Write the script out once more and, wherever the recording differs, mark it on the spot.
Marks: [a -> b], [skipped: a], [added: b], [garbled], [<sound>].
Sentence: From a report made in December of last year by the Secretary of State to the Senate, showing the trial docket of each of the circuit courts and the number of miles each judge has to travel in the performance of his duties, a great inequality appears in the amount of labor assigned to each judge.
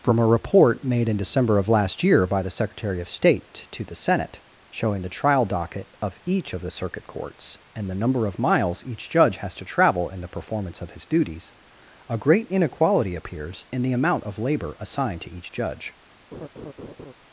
From a report made in December of last year by the Secretary of State to the Senate, showing the trial docket of each of the circuit courts and the number of miles each judge has to travel in the performance of his duties, a great inequality appears in the amount of labor assigned to each judge. [laugh]